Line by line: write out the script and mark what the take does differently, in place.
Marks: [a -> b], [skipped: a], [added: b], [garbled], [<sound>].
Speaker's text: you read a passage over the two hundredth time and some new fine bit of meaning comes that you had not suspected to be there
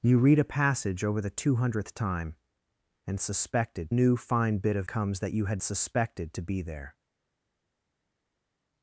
you read a passage over the two hundredth time and [some -> suspected] new fine bit of [skipped: meaning] comes that you had [skipped: not] suspected to be there